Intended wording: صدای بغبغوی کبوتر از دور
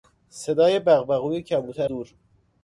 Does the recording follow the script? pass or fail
fail